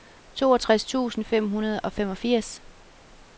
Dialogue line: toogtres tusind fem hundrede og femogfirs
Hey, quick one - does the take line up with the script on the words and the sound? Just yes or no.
yes